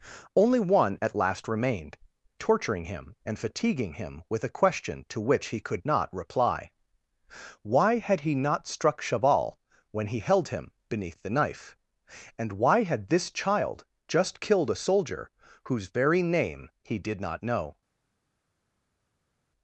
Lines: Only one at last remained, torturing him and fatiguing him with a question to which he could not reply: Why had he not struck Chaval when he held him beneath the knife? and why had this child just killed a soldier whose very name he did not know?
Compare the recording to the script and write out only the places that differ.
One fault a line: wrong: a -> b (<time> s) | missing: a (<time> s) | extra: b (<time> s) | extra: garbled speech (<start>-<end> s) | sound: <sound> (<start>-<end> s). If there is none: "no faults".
no faults